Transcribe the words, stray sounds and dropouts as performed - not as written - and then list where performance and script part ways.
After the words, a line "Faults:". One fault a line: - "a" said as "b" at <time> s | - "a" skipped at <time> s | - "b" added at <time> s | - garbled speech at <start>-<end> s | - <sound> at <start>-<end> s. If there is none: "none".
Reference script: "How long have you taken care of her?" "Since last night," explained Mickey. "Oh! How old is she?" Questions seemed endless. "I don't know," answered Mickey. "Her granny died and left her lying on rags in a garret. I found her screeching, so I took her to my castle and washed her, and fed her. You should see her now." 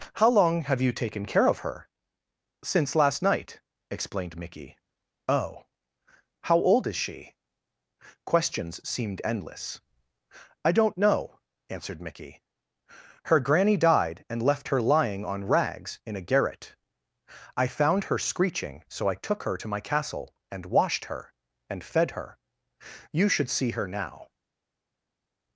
"How long have you taken care of her?" "Since last night," explained Mickey. "Oh! How old is she?" Questions seemed endless. "I don't know," answered Mickey. "Her granny died and left her lying on rags in a garret. I found her screeching, so I took her to my castle and washed her, and fed her. You should see her now."
Faults:
none